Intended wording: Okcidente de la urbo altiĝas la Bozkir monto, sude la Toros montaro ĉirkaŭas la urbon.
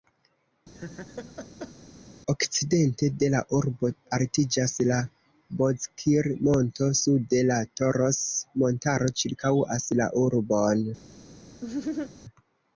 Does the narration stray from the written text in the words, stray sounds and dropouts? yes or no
yes